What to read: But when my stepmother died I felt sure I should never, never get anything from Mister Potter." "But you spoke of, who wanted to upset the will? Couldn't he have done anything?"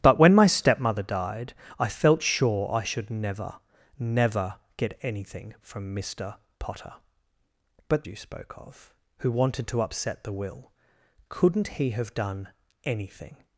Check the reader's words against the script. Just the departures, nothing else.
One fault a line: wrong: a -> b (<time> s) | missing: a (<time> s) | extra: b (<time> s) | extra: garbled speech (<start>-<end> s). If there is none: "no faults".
no faults